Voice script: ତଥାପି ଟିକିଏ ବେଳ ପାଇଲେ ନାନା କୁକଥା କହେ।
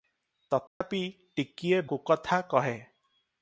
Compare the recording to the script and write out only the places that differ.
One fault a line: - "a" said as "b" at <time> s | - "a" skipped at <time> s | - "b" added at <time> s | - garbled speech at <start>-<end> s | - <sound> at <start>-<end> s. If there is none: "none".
- dropout at 0.7-0.8 s
- "ବେଳ ପାଇଲେ ନାନା" skipped at 1.8 s